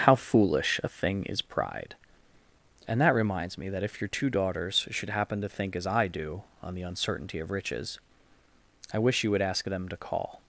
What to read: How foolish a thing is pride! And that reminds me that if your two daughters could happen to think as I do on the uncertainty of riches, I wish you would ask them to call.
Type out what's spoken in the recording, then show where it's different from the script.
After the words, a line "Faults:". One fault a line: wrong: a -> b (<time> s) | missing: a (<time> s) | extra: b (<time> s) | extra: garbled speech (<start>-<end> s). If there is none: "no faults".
How foolish a thing is pride! And that reminds me that if your two daughters should happen to think as I do on the uncertainty of riches, I wish you would ask them to call.
Faults:
wrong: could -> should (4.9 s)